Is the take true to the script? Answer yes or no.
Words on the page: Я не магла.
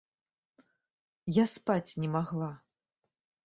no